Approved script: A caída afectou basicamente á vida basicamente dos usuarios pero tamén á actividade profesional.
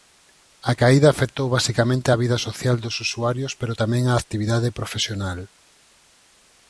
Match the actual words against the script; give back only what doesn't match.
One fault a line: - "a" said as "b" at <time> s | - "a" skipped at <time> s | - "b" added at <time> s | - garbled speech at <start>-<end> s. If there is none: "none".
- "basicamente" said as "social" at 2.5 s